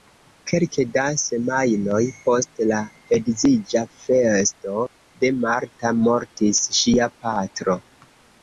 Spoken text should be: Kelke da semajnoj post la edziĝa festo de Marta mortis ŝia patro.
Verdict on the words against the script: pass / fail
pass